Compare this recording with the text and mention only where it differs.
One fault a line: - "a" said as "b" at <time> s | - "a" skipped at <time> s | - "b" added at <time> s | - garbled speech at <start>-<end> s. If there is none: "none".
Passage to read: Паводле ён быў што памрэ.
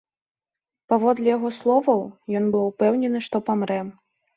- "яго словаў" added at 1.4 s
- "упэўнены" added at 2.7 s